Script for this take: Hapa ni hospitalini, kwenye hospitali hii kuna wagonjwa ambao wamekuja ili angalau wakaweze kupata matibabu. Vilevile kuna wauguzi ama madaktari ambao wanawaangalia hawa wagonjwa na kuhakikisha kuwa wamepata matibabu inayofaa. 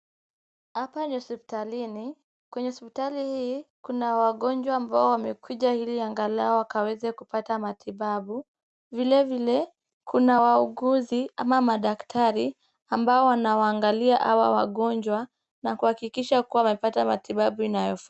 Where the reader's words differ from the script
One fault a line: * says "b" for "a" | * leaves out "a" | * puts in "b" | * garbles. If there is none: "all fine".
all fine